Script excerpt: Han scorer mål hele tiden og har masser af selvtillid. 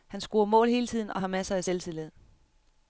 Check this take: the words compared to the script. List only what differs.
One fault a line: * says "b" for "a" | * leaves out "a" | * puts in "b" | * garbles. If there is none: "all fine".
all fine